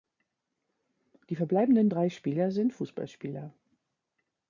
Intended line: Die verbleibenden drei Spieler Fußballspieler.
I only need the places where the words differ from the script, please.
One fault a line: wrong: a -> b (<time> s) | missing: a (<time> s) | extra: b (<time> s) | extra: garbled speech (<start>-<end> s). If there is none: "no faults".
extra: sind (2.5 s)